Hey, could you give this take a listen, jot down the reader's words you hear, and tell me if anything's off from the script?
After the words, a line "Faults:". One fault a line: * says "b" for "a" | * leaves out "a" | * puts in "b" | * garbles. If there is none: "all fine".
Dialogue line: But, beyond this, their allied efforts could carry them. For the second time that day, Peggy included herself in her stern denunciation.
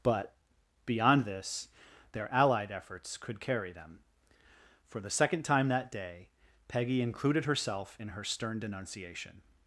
But, beyond this, their allied efforts could carry them. For the second time that day, Peggy included herself in her stern denunciation.
Faults:
all fine